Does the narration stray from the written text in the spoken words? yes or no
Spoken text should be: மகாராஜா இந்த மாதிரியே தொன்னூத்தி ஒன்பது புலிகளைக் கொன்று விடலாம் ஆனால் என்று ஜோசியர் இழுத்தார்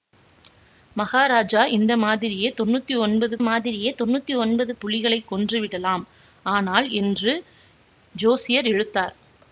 yes